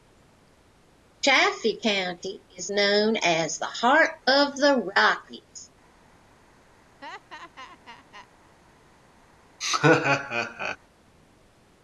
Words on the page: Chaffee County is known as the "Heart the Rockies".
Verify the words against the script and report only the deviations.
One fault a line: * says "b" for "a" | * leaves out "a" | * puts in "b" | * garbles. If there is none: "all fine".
* puts in "of"